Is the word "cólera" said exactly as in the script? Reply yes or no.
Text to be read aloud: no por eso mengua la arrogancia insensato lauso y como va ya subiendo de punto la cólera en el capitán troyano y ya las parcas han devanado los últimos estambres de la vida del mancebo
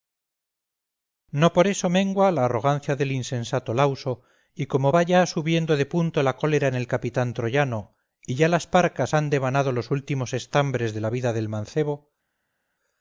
yes